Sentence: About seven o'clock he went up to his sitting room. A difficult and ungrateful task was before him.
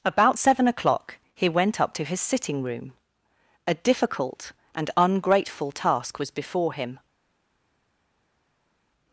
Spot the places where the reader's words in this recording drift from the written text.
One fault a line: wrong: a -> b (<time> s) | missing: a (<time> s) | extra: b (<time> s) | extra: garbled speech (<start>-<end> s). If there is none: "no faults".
no faults